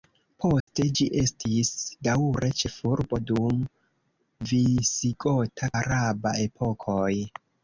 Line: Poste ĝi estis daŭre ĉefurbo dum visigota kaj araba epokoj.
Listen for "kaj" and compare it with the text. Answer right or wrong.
wrong